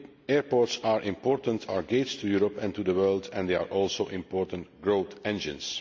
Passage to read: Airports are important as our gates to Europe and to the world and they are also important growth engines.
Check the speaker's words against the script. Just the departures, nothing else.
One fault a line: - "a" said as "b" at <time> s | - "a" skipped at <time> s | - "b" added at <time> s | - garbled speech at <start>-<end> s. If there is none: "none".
- "as" skipped at 1.7 s